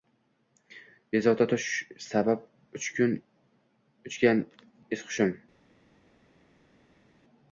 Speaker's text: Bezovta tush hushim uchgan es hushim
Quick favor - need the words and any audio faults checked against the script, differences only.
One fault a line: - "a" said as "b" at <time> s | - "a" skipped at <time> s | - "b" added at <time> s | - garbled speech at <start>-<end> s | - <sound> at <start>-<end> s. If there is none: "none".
- "hushim" said as "sabab" at 2.1 s